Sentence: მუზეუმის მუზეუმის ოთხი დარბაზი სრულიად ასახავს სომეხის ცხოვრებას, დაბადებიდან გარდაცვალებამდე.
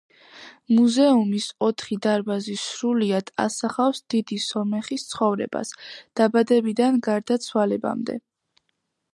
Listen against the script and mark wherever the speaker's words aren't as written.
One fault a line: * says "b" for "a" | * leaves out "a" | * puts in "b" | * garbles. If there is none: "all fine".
* leaves out "მუზეუმის"
* puts in "დიდი"